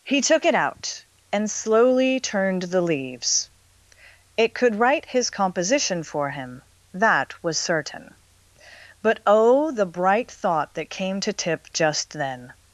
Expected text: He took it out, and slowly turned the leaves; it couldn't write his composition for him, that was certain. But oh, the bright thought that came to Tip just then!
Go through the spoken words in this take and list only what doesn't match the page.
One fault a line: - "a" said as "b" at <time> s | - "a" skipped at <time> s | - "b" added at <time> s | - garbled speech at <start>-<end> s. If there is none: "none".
- "couldn't" said as "could" at 4.5 s